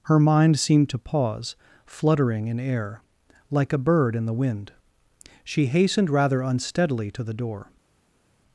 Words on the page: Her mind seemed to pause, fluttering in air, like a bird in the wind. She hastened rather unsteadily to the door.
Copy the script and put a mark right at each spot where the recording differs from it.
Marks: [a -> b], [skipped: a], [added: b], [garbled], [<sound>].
Her mind seemed to pause, fluttering in air, like a bird in the wind. She hastened rather unsteadily to the door.